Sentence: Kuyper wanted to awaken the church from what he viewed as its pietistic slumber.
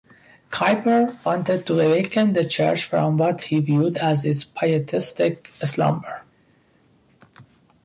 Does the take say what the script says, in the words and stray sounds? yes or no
yes